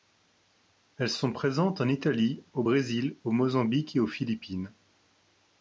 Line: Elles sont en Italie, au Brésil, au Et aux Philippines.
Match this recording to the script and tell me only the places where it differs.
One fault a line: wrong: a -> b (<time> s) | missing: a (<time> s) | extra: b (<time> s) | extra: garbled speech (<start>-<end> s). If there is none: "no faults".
extra: présentes (1.3 s)
extra: Mozambique (3.3 s)